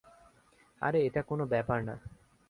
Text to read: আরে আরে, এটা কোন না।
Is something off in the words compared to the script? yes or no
yes